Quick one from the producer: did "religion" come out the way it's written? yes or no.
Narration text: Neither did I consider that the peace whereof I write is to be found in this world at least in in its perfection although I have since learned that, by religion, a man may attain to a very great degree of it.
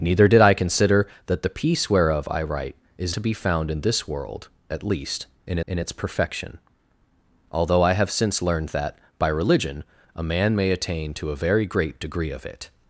yes